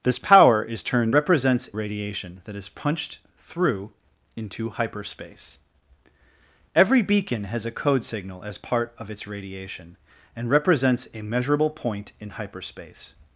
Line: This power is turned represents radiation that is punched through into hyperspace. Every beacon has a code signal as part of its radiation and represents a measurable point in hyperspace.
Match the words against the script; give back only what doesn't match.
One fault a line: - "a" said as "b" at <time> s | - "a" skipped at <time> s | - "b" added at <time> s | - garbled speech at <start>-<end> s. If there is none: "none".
none